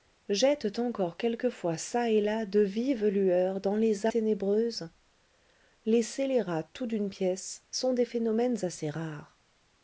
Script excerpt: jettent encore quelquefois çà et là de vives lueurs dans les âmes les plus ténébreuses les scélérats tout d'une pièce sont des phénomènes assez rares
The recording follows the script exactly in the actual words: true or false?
false